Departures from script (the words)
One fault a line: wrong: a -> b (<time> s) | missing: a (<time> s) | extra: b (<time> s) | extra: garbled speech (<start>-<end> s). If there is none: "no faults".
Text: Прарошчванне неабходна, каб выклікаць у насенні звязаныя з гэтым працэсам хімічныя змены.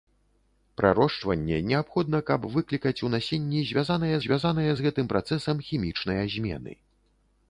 extra: звязаныя (4.3 s)